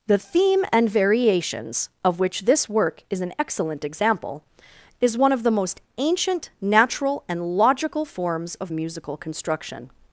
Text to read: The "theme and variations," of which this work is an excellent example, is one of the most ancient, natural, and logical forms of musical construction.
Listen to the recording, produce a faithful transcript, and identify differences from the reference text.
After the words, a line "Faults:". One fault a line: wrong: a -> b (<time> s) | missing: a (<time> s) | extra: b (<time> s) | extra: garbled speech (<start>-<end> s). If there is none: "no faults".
The "theme and variations," of which this work is an excellent example, is one of the most ancient, natural, and logical forms of musical construction.
Faults:
no faults